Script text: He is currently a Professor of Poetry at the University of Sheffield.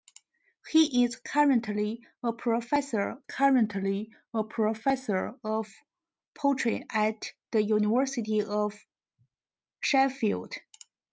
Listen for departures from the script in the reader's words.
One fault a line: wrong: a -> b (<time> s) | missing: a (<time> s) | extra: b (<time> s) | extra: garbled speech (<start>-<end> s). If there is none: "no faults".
extra: currently a Professor (3.2 s)